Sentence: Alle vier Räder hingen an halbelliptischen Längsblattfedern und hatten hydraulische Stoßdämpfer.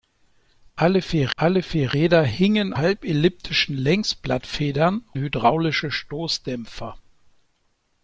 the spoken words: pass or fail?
fail